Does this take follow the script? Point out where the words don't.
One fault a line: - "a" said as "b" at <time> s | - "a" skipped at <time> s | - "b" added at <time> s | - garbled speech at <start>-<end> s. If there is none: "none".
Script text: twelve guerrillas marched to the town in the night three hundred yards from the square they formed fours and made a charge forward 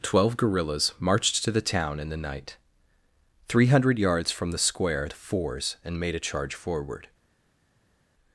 - "they formed" skipped at 5.1 s